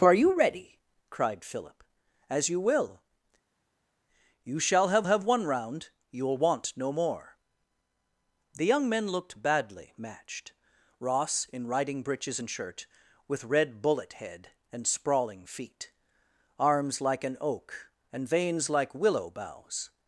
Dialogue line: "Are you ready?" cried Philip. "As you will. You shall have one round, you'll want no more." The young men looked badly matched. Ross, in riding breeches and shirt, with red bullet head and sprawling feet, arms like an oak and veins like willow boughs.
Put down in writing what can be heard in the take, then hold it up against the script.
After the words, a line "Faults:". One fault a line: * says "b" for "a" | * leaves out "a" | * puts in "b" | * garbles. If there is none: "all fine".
"Are you ready?" cried Philip. "As you will. You shall have have one round, you'll want no more." The young men looked badly matched. Ross, in riding breeches and shirt, with red bullet head and sprawling feet, arms like an oak and veins like willow boughs.
Faults:
* puts in "have"